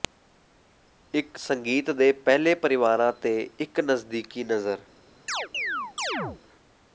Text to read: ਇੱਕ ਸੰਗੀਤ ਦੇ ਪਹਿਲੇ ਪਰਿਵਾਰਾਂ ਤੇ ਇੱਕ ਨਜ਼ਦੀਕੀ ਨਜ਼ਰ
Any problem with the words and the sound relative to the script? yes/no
yes